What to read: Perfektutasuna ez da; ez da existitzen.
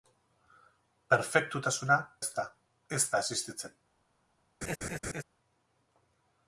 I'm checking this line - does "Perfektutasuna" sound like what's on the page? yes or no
yes